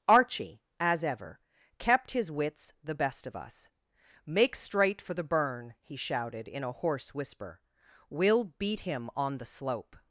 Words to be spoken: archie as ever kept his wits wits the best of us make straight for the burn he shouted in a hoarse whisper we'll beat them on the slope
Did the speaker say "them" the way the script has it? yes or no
no